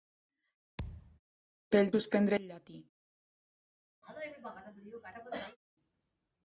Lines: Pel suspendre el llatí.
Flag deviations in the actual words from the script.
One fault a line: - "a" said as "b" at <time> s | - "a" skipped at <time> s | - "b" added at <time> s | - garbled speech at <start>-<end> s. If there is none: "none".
none